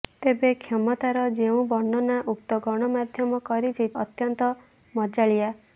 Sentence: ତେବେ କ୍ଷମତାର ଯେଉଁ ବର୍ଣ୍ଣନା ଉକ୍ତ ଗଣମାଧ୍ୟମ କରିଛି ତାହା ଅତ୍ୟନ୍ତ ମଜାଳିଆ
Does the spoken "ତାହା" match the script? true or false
false